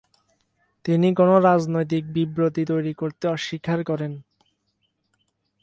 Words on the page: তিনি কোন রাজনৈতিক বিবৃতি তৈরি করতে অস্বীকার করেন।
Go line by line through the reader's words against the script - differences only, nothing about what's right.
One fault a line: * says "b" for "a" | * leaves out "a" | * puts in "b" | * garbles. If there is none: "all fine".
all fine